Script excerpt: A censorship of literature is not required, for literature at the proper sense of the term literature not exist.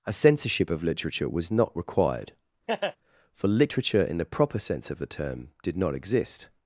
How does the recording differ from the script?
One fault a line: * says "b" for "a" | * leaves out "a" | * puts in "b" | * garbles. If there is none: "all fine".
* says "was" for "is"
* says "in" for "at"
* says "did" for "literature"